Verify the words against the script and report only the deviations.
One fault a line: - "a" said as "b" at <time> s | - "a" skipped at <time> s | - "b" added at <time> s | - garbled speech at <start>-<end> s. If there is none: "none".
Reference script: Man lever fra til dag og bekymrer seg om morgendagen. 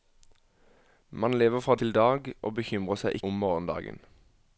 none